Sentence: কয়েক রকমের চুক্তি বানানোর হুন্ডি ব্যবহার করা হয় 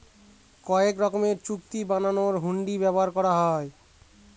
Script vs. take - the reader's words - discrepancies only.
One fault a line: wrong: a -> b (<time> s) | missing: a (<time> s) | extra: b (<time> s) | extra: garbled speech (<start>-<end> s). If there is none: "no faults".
no faults